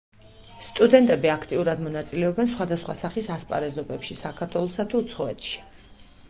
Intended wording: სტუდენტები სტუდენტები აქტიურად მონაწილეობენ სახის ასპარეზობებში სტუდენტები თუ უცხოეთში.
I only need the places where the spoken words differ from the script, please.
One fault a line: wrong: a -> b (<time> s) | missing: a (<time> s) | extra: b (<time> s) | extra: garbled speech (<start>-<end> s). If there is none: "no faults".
missing: სტუდენტები (1.3 s)
extra: სხვადასხვა (2.5 s)
wrong: სტუდენტები -> საქართველოსა (4.2 s)